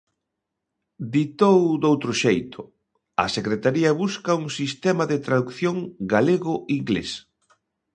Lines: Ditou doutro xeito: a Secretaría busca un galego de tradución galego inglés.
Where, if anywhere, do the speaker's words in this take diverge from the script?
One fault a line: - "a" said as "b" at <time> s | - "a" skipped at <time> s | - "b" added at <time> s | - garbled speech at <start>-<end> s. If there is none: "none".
- "galego" said as "sistema" at 4.6 s